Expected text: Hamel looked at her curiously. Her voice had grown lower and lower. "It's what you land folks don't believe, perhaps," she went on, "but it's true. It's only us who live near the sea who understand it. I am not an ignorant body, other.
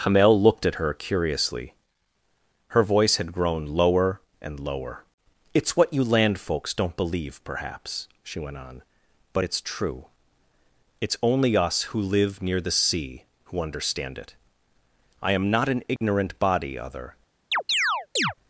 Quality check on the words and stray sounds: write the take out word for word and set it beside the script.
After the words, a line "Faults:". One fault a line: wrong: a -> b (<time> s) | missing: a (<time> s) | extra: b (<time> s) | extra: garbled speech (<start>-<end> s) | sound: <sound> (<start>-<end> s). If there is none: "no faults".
Hamel looked at her curiously. Her voice had grown lower and lower. "It's what you land folks don't believe, perhaps," she went on, "but it's true. It's only us who live near the sea who understand it. I am not an ignorant body, other.
Faults:
sound: dropout (16.0-16.0 s)
sound: chirp (17.5-18.3 s)